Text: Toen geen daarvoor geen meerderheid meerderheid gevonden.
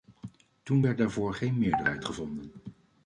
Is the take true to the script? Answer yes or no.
no